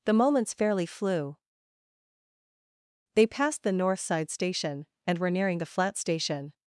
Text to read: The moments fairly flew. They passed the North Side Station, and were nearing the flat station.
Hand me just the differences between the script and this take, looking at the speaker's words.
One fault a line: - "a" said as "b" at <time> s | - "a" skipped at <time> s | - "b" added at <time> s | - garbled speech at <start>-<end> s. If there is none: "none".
none